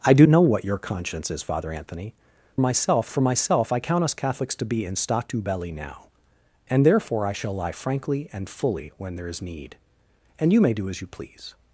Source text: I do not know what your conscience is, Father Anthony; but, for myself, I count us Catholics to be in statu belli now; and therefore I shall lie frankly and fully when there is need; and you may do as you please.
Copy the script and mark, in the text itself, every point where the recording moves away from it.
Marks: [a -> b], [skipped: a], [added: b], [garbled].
I do [skipped: not] know what your conscience is, Father Anthony; [but, -> myself] for myself, I count us Catholics to be in statu belli now; and therefore I shall lie frankly and fully when there is need; and you may do as you please.